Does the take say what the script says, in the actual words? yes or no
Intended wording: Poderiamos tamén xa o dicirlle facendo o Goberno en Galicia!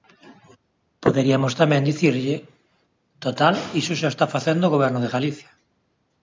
no